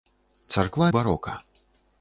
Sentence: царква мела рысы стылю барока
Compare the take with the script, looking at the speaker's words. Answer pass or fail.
fail